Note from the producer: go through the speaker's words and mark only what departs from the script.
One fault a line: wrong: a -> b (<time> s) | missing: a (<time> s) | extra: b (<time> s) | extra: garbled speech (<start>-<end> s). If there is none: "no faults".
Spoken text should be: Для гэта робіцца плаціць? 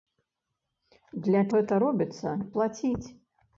no faults